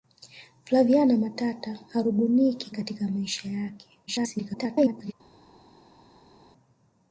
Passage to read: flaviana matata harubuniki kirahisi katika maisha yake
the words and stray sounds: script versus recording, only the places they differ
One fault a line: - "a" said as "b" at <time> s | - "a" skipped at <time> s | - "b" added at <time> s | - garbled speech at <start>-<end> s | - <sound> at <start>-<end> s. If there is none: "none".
- "kirahisi" skipped at 2.7 s
- garbled speech at 4.1-5.1 s